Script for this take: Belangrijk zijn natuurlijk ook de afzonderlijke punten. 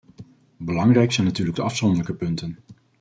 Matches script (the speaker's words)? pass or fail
fail